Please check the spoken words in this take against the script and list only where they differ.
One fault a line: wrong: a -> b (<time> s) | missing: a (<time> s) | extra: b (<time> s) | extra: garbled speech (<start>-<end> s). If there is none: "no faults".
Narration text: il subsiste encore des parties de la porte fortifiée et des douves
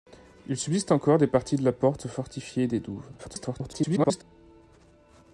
extra: garbled speech (3.2-4.2 s)